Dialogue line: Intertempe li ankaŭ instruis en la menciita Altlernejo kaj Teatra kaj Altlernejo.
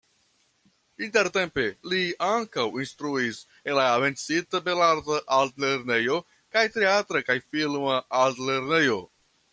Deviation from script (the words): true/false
true